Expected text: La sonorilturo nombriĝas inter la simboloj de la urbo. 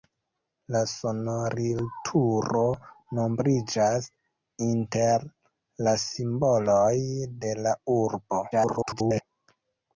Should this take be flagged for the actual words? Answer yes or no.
yes